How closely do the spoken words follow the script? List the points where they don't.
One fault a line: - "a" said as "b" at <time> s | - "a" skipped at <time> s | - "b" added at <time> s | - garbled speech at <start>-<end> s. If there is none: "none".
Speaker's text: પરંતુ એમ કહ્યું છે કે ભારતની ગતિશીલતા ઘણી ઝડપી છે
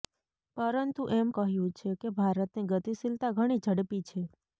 none